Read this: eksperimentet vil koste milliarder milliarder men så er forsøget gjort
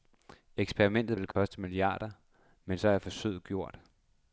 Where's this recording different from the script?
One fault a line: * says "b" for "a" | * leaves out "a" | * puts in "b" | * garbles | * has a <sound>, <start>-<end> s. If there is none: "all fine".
* has a dropout, 1.3-1.4 s
* leaves out "milliarder"